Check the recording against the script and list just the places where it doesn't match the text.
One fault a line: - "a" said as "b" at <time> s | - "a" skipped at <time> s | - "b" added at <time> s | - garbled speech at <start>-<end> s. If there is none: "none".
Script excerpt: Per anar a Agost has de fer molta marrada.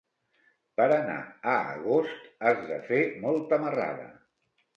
none